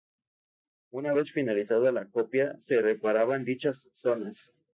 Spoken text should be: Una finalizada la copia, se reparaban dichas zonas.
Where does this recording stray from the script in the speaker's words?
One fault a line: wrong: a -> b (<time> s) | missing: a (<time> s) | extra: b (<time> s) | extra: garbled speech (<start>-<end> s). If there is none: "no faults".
extra: vez (1.1 s)